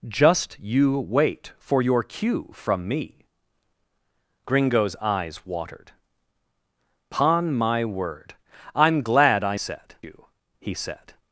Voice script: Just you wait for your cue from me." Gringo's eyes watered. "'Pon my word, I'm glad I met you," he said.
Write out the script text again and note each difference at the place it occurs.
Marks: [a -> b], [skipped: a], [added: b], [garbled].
Just you wait for your cue from me." Gringo's eyes watered. "'Pon my word, I'm glad I [met -> said] you," he said.